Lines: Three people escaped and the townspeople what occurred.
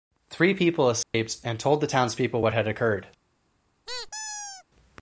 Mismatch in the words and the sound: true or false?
true